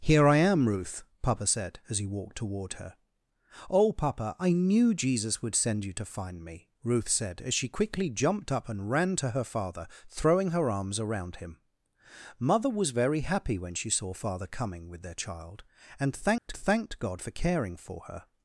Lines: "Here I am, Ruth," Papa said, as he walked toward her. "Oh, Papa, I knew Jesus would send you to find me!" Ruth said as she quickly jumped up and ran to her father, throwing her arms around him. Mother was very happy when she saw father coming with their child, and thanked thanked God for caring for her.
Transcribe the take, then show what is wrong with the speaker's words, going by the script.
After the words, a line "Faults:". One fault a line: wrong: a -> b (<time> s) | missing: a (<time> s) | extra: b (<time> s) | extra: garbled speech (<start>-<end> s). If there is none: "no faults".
"Here I am, Ruth," Papa said, as he walked toward her. "Oh, Papa, I knew Jesus would send you to find me!" Ruth said as she quickly jumped up and ran to her father, throwing her arms around him. Mother was very happy when she saw father coming with their child, and thanked thanked God for caring for her.
Faults:
no faults